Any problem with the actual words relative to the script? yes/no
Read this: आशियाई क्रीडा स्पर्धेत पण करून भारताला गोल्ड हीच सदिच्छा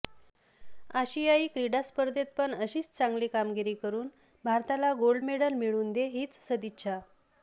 yes